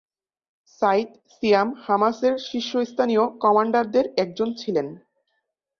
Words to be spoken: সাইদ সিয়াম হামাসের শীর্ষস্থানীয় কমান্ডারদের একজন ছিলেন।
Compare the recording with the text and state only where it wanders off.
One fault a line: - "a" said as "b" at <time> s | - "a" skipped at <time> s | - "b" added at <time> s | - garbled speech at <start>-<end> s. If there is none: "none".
none